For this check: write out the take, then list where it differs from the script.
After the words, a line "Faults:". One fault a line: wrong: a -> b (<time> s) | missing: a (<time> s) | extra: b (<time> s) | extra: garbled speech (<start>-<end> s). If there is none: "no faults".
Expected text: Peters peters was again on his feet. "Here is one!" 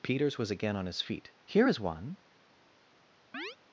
Peters was again on his feet. "Here is one!"
Faults:
missing: peters (0.4 s)